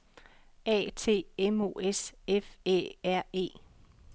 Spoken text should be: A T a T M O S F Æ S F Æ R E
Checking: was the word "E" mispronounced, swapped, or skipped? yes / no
no